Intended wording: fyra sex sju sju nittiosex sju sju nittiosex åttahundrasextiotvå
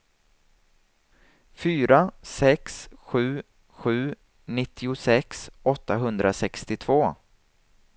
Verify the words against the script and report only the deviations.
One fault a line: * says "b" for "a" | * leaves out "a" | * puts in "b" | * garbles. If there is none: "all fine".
* leaves out "sju sju nittiosex"